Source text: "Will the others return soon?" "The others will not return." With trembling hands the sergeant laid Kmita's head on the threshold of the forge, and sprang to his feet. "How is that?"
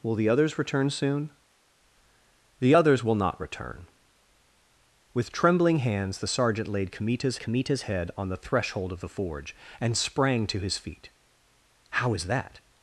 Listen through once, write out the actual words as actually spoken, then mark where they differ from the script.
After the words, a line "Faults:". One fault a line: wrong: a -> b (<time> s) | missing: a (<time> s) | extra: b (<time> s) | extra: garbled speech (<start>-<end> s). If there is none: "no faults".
"Will the others return soon?" "The others will not return." With trembling hands the sergeant laid Kmita's Kmita's head on the threshold of the forge, and sprang to his feet. "How is that?"
Faults:
extra: Kmita's (7.4 s)